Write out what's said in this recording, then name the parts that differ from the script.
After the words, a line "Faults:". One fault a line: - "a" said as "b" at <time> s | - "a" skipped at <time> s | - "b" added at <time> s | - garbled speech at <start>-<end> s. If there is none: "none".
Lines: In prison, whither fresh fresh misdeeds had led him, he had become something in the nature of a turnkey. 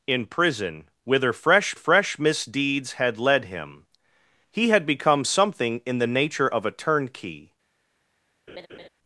In prison, whither fresh fresh misdeeds had led him, he had become something in the nature of a turnkey.
Faults:
none